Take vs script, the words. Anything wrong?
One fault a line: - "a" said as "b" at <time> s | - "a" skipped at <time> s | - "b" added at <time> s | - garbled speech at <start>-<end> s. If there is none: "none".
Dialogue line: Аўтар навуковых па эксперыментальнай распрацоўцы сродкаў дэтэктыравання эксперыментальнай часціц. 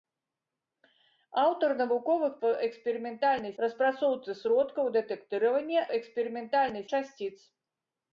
none